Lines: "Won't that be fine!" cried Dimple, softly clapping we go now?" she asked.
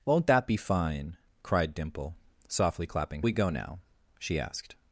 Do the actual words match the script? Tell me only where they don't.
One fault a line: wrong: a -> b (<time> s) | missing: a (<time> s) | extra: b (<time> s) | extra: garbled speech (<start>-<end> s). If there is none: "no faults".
no faults